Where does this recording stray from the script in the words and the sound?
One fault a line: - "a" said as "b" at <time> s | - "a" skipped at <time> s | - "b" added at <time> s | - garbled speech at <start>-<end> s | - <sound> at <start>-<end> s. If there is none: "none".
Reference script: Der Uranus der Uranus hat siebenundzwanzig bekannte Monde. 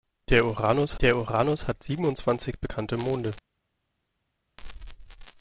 none